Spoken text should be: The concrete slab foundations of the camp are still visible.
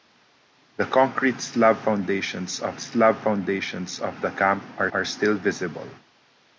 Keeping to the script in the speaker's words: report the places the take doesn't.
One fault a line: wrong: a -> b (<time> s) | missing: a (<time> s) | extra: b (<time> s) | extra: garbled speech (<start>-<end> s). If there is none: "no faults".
extra: slab foundations of (2.8 s)
extra: are (4.9 s)